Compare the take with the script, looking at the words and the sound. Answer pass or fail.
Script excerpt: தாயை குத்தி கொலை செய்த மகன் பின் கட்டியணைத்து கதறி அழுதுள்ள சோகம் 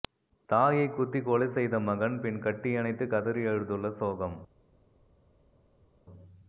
pass